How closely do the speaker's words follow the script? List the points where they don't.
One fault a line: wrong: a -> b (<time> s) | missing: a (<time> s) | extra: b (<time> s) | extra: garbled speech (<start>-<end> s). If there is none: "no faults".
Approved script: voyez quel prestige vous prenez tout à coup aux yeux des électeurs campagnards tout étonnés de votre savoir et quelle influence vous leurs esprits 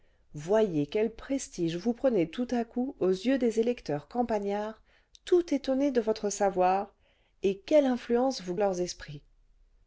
no faults